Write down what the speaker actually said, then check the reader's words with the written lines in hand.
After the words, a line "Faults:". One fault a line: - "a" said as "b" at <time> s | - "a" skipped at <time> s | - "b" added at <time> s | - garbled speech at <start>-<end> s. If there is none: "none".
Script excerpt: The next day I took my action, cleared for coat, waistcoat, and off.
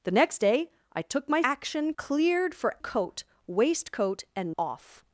The next day I took my action, cleared for coat, waistcoat, and off.
Faults:
none